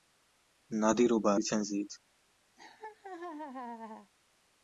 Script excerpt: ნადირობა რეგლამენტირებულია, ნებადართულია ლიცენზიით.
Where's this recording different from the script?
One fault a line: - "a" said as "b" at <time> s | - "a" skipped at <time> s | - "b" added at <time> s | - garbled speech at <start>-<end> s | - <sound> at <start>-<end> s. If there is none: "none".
- "რეგლამენტირებულია ნებადართულია" skipped at 1.3 s
- laugh at 2.6-4.1 s